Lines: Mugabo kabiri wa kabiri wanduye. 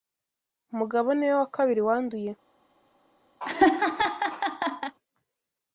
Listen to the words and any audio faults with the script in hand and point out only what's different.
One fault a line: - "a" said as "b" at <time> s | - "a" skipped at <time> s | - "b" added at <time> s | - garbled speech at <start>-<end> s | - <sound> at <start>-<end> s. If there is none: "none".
- "kabiri" said as "niwe" at 1.1 s
- laugh at 3.4-5.0 s